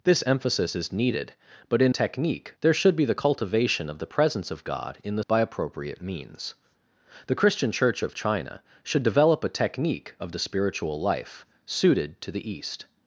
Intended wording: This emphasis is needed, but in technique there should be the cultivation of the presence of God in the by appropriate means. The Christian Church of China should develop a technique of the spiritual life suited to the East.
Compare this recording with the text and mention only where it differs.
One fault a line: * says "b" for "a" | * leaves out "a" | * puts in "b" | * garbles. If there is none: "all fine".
all fine